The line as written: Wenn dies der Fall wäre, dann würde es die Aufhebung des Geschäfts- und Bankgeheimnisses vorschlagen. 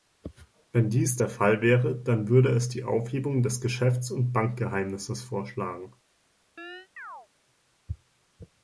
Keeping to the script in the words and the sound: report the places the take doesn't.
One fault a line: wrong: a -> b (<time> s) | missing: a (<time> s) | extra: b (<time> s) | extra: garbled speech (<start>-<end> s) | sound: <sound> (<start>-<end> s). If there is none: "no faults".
sound: chirp (6.6-7.3 s)